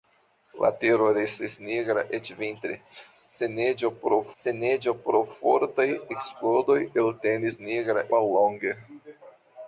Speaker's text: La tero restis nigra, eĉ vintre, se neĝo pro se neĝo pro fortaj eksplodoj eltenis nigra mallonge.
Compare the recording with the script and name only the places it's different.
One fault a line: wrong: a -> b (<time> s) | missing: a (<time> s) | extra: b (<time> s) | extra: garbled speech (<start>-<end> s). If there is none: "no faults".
no faults